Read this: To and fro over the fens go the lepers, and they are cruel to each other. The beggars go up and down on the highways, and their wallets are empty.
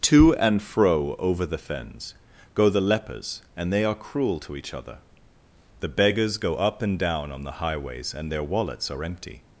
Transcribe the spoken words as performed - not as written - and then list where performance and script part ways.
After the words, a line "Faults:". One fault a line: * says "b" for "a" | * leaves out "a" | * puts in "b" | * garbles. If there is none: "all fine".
To and fro over the fens go the lepers, and they are cruel to each other. The beggars go up and down on the highways, and their wallets are empty.
Faults:
all fine